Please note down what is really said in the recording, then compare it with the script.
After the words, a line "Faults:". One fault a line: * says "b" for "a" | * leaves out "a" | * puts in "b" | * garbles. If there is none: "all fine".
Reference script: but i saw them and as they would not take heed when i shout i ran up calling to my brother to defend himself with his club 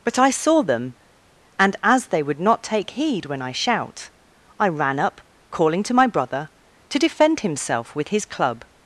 but i saw them and as they would not take heed when i shout i ran up calling to my brother to defend himself with his club
Faults:
all fine